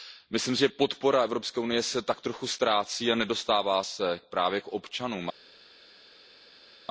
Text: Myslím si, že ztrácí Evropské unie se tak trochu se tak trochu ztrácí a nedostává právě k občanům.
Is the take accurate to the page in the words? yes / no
no